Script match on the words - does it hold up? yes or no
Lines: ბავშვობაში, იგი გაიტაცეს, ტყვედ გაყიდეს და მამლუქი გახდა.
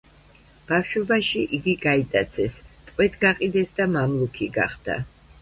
yes